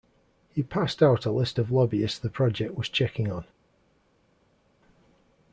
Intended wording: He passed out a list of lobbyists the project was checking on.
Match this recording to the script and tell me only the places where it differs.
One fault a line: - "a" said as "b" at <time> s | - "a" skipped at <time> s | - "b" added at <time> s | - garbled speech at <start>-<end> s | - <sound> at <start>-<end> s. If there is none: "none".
none